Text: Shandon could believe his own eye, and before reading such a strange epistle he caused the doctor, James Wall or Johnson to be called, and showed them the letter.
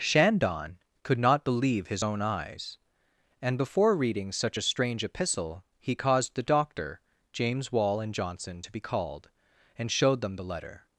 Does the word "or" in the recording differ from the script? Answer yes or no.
yes